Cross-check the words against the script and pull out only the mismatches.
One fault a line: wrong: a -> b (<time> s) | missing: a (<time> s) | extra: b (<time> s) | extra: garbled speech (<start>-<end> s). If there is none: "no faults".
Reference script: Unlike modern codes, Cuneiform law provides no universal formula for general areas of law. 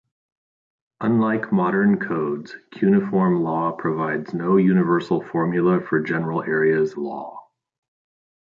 missing: of (6.9 s)